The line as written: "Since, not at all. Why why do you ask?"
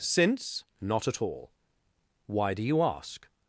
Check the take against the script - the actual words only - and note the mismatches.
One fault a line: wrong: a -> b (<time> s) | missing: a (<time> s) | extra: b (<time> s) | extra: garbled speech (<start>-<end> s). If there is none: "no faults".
missing: why (2.5 s)